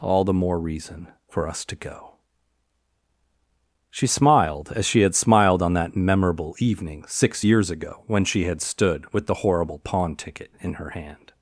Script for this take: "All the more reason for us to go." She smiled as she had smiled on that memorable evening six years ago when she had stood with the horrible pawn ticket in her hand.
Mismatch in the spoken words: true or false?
false